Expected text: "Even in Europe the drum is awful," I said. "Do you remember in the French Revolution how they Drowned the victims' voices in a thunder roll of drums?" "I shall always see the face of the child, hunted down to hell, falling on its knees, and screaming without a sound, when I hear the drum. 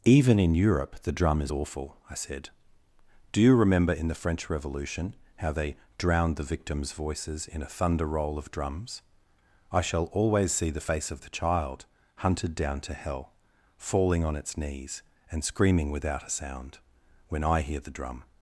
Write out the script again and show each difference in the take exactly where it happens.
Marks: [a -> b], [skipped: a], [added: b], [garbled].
"Even in Europe the drum is awful," I said. "Do you remember in the French Revolution how they Drowned the victims' voices in a thunder roll of drums?" "I shall always see the face of the child, hunted down to hell, falling on its knees, and screaming without a sound, when I hear the drum.